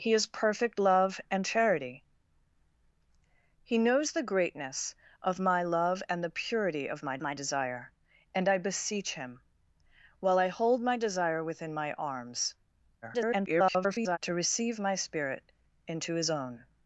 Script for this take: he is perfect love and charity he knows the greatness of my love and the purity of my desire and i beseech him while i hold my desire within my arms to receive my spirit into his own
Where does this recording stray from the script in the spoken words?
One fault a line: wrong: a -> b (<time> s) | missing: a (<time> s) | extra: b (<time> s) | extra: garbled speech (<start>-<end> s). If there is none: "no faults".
extra: my (7.2 s)
extra: garbled speech (13.0-14.2 s)